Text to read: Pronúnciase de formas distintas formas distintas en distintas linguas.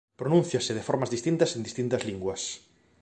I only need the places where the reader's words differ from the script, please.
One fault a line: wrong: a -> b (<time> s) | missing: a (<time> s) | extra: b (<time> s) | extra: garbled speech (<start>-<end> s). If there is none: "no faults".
missing: formas distintas (1.6 s)